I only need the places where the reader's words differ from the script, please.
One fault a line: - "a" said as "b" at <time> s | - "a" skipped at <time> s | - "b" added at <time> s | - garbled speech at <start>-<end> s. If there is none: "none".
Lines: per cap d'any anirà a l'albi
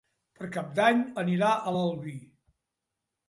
none